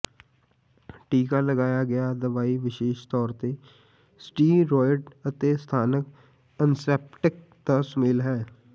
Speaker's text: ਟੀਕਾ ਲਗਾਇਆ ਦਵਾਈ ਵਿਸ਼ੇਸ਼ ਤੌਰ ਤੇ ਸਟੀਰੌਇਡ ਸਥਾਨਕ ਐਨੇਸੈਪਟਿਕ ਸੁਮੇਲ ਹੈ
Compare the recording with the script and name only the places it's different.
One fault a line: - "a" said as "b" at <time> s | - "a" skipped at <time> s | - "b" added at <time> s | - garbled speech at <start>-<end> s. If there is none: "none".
- "ਗਿਆ" added at 1.9 s
- "ਅਤੇ" added at 5.3 s
- "ਦਾ" added at 7.7 s